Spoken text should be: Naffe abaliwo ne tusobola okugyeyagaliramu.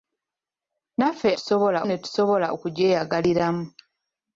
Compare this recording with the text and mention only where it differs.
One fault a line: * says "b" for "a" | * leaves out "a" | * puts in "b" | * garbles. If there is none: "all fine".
* says "tusobola" for "abaliwo"